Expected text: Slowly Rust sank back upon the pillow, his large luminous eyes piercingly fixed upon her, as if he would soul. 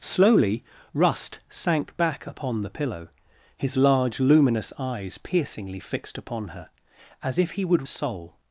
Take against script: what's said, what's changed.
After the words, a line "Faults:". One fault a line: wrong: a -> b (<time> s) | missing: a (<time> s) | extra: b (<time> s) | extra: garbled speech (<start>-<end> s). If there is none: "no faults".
Slowly Rust sank back upon the pillow, his large luminous eyes piercingly fixed upon her, as if he would soul.
Faults:
no faults